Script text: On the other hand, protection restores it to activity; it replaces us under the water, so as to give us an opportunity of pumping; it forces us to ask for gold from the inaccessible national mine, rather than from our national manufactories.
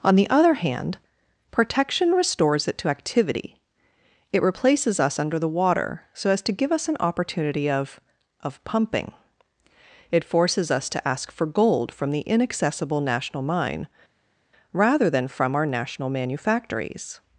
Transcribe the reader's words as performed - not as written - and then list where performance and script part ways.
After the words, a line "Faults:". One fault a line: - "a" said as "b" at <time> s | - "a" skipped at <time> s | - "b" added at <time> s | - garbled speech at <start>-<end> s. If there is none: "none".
On the other hand, protection restores it to activity; it replaces us under the water, so as to give us an opportunity of of pumping; it forces us to ask for gold from the inaccessible national mine, rather than from our national manufactories.
Faults:
- "of" added at 8.4 s